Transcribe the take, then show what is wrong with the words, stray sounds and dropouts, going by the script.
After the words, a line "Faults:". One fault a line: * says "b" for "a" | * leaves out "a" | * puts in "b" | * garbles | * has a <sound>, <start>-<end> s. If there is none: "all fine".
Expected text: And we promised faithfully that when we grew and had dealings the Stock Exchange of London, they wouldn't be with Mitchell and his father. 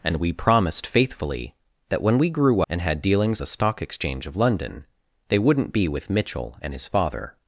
And we promised faithfully that when we grew and had dealings the Stock Exchange of London, they wouldn't be with Mitchell and his father.
Faults:
all fine